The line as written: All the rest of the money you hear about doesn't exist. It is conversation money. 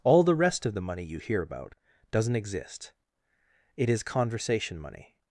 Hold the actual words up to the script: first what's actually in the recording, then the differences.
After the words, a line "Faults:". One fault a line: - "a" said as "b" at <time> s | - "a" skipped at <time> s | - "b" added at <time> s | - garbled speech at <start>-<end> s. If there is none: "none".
All the rest of the money you hear about doesn't exist. It is conversation money.
Faults:
none